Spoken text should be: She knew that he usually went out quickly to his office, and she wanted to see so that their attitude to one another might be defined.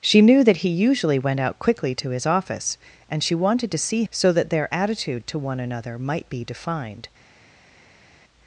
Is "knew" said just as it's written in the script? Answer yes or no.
yes